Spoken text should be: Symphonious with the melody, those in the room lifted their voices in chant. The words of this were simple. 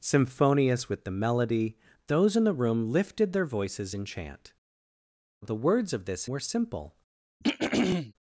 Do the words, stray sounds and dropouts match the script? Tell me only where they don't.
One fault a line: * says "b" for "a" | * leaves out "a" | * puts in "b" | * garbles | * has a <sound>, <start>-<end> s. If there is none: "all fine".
* has a throat clearing, 7.4-8.1 s